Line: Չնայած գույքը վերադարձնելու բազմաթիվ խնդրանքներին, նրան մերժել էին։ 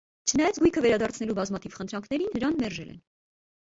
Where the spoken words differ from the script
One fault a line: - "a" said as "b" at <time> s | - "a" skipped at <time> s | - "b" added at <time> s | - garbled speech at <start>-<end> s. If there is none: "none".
- "էին" said as "են" at 2.9 s